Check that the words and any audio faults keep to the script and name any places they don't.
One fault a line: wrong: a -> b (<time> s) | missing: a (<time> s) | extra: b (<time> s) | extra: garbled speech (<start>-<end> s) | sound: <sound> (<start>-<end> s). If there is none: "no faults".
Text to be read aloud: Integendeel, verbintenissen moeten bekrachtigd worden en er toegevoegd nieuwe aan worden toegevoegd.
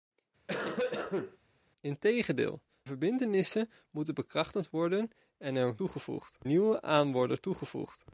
sound: cough (0.5-1.4 s)